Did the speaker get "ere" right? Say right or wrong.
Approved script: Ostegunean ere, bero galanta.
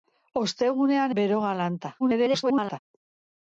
wrong